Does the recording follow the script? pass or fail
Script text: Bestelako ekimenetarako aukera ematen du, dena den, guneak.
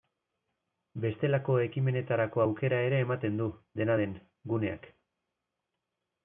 fail